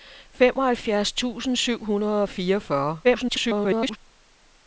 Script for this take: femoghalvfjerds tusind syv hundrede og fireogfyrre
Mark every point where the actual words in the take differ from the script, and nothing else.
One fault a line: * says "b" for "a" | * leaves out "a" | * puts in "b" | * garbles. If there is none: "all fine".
* garbles